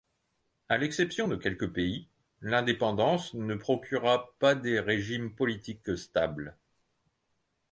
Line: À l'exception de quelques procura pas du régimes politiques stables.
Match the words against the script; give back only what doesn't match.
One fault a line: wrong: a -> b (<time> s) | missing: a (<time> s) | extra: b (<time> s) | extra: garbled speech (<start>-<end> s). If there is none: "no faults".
extra: pays l'indépendance ne (1.7 s)
wrong: du -> des (4.6 s)